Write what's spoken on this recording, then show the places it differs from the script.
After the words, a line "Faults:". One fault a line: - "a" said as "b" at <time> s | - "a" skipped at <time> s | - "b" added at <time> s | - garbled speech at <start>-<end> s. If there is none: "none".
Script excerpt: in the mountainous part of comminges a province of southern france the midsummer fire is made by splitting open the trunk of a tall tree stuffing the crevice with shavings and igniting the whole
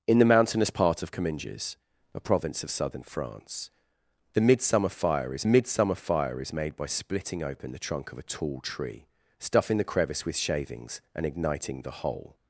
in the mountainous part of comminges a province of southern france the midsummer fire is midsummer fire is made by splitting open the trunk of a tall tree stuffing the crevice with shavings and igniting the whole
Faults:
- "midsummer fire is" added at 5.4 s